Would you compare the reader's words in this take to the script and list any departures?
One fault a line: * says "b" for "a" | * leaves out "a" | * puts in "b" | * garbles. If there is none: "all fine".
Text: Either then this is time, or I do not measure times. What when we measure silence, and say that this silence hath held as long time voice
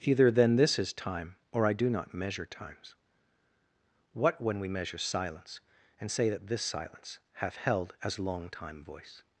all fine